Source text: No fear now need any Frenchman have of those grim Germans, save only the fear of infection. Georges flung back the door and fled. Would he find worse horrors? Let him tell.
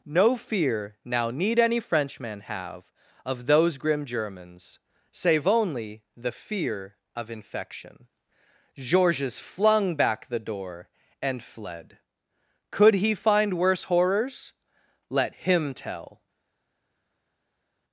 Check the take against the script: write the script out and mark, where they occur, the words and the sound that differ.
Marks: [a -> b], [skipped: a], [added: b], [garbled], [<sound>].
No fear now need any Frenchman have of those grim Germans, save only the fear of infection. Georges flung back the door and fled. [Would -> Could] he find worse horrors? Let him tell.